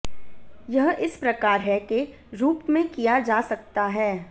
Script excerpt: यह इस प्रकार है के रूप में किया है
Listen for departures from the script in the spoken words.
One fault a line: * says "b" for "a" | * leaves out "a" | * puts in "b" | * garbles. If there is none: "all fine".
* puts in "जा सकता"